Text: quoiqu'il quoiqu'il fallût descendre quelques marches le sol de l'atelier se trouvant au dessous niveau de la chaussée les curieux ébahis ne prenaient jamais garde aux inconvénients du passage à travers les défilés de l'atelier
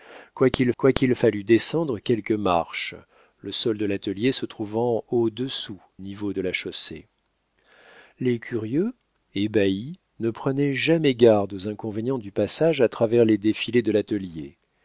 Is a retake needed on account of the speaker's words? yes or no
no